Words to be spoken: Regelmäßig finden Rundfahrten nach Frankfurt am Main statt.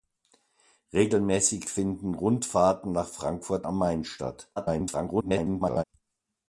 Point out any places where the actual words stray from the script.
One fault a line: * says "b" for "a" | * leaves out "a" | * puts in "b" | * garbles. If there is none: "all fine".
* garbles